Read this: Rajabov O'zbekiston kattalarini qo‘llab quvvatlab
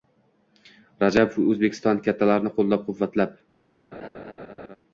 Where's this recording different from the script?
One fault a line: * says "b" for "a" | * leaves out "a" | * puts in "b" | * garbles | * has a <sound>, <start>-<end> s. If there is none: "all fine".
* has a laugh, 3.9-4.8 s